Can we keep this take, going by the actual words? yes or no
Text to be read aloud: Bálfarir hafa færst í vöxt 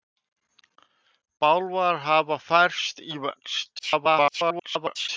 no